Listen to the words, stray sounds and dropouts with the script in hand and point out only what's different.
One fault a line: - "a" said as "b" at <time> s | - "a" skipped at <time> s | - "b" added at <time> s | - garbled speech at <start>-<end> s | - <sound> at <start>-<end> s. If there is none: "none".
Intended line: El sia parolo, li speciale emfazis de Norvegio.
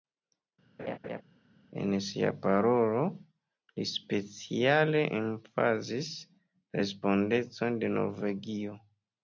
- laugh at 0.8-1.2 s
- "El" said as "En" at 1.8 s
- "la respondecon" added at 6.2 s